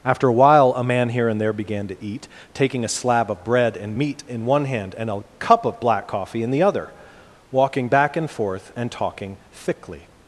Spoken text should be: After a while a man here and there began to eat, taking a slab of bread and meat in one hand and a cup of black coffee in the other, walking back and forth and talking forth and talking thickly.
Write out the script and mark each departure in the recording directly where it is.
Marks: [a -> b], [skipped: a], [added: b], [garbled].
After a while a man here and there began to eat, taking a slab of bread and meat in one hand and a cup of black coffee in the other, walking back and forth and talking [skipped: forth and talking] thickly.